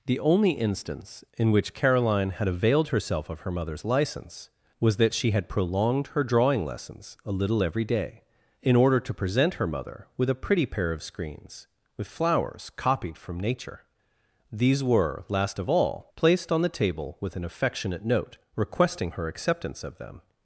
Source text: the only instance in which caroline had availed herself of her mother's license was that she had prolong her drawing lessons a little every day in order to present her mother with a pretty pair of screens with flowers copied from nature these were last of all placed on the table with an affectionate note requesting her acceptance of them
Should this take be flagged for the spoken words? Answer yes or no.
yes